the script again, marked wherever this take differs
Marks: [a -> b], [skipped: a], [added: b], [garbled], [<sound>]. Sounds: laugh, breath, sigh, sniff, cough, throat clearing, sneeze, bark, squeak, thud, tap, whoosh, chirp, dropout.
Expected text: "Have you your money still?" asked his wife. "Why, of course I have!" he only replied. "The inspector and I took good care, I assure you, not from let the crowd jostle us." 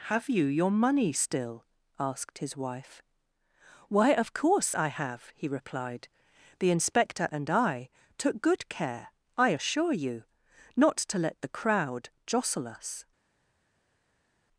"Have you your money still?" asked his wife. "Why, of course I have!" he [skipped: only] replied. "The inspector and I took good care, I assure you, not [from -> to] let the crowd jostle us."